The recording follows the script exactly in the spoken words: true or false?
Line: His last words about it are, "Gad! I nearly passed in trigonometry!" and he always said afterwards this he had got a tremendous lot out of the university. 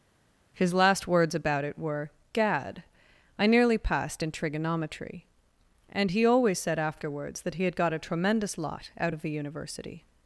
false